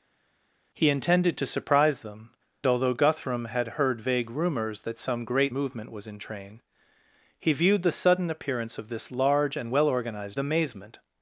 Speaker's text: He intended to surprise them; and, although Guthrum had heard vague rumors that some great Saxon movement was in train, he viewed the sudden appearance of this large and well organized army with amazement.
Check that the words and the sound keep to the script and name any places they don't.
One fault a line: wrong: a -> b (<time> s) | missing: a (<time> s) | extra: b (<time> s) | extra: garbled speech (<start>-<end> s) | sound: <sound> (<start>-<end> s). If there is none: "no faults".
missing: and (2.3 s)
missing: Saxon (5.5 s)
missing: army with (10.4 s)